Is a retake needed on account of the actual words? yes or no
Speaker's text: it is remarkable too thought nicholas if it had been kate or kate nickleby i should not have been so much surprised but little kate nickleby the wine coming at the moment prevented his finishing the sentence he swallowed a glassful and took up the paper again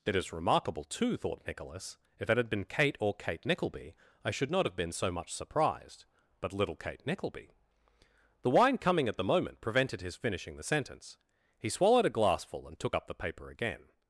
no